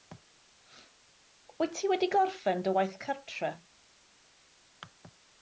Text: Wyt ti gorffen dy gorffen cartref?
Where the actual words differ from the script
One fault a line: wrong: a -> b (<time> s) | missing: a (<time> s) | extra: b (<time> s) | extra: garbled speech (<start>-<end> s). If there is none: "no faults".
extra: wedi (1.9 s)
wrong: gorffen -> waith (2.8 s)